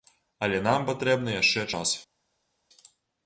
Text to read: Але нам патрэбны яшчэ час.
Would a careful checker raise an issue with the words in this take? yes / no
no